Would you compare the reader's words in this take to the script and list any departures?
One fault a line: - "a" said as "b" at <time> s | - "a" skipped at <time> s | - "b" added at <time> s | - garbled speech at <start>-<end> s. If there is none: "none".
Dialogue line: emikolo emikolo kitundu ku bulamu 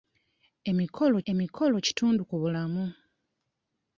none